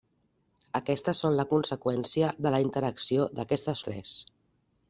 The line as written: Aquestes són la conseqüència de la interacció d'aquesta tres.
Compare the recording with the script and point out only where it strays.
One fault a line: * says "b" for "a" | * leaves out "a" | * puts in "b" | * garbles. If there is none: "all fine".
all fine